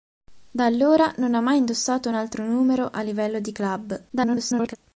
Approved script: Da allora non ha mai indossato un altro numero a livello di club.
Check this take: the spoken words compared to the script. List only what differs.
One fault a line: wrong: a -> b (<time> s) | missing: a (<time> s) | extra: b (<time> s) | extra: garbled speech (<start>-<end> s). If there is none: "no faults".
extra: garbled speech (4.1-4.8 s)